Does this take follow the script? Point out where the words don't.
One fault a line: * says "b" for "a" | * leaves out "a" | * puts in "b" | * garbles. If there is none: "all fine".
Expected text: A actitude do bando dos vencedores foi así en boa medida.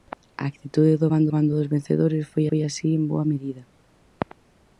* puts in "bando"
* puts in "foi"